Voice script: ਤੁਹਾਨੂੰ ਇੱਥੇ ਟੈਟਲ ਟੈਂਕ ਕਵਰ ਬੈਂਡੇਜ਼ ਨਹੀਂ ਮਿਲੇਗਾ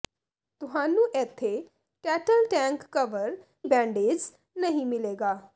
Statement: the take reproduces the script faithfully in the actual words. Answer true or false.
true